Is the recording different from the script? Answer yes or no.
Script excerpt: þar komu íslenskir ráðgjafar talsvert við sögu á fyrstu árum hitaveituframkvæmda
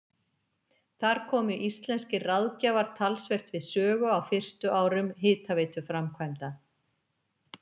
no